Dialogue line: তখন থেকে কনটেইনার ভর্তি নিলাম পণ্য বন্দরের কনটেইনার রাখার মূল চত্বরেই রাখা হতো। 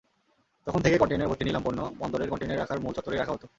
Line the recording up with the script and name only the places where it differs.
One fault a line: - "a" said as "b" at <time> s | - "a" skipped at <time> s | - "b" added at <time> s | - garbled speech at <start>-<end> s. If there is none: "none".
none